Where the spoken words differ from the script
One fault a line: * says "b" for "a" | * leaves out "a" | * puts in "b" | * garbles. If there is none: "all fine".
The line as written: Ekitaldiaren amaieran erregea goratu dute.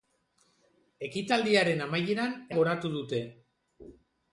* leaves out "erregea"